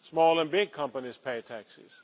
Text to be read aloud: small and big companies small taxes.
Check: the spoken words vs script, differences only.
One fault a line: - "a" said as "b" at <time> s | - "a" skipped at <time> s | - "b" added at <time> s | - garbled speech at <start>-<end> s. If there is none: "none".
- "small" said as "pay" at 1.2 s